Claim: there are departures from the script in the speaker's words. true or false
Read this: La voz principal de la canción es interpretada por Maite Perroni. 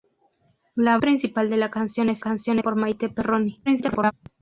true